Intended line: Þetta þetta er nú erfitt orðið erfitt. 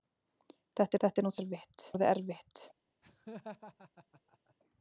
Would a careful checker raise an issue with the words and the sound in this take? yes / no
yes